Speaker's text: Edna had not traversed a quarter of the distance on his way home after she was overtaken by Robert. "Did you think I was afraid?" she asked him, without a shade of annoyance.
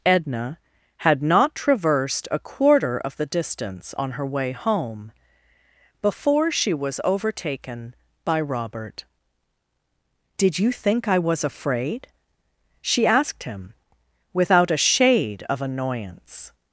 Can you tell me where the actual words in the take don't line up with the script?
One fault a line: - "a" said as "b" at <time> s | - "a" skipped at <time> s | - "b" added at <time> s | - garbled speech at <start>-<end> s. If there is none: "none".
- "his" said as "her" at 4.1 s
- "after" said as "before" at 6.0 s